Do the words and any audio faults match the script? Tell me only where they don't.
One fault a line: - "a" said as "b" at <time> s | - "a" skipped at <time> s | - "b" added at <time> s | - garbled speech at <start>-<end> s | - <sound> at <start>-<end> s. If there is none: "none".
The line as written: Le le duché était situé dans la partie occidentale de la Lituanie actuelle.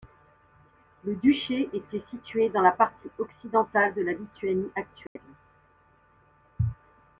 - "le" skipped at 1.1 s
- dropout at 5.1-5.2 s